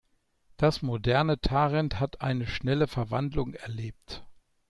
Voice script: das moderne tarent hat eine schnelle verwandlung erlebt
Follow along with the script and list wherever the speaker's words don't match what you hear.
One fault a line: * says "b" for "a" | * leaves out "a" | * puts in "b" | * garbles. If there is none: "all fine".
all fine